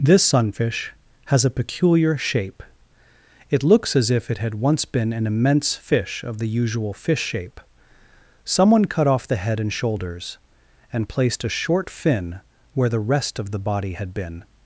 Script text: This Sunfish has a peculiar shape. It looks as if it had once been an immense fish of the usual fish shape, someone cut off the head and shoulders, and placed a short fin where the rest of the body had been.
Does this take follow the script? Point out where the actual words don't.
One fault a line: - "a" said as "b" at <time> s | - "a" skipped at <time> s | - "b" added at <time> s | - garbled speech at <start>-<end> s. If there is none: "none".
none